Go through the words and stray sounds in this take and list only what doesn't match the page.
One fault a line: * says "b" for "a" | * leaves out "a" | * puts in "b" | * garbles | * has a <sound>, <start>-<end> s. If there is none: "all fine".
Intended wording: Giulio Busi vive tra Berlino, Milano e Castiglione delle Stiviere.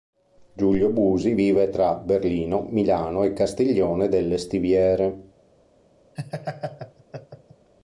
* has a laugh, 6.2-7.7 s